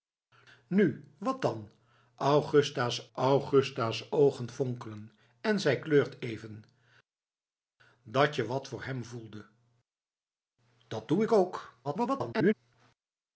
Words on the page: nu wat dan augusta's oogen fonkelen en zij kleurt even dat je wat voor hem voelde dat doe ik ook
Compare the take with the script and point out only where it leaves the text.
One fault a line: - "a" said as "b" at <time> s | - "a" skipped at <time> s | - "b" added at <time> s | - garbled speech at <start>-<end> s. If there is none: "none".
- "augusta's" added at 3.1 s
- garbled speech at 11.8-12.5 s